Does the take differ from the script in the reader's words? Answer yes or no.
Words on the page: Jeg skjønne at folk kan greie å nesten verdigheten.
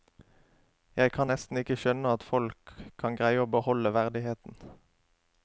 yes